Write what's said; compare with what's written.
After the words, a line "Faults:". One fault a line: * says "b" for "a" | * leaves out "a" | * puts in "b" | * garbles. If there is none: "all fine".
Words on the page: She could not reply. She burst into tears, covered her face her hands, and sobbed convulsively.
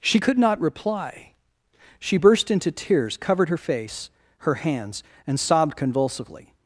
She could not reply. She burst into tears, covered her face her hands, and sobbed convulsively.
Faults:
all fine